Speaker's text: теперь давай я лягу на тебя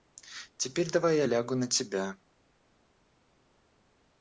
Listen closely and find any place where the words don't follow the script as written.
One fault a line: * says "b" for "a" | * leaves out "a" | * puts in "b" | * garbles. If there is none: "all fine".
all fine